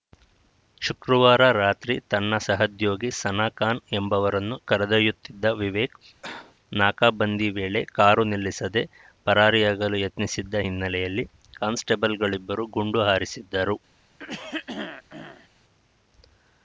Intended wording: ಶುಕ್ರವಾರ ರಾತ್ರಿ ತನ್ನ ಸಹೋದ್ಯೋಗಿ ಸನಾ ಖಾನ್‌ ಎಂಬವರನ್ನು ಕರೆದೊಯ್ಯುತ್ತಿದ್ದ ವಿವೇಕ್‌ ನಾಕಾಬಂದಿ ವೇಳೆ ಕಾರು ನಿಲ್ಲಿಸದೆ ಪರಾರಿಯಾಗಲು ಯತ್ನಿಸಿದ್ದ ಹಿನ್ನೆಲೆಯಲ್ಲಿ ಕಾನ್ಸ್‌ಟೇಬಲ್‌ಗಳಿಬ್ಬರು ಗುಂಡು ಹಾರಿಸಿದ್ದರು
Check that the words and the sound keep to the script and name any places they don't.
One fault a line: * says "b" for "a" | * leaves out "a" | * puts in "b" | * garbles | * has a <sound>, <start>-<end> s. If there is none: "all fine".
* has a cough, 6.2-6.6 s
* has a throat clearing, 14.2-15.5 s